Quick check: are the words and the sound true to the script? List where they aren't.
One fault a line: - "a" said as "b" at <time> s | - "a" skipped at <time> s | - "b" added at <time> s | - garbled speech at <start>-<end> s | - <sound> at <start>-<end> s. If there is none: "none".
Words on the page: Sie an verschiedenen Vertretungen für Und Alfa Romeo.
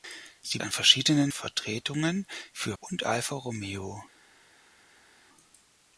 none